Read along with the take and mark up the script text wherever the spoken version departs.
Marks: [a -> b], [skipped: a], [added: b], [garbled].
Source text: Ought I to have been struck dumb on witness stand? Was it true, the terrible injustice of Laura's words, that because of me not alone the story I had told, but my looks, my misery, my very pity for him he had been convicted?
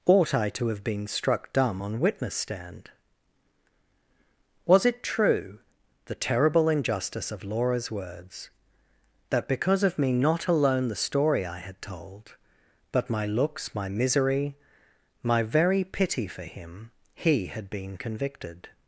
Ought I to have been struck dumb on witness stand? Was it true, the terrible injustice of Laura's words, that because of me not alone the story I had told, but my looks, my misery, my very pity for him he had been convicted?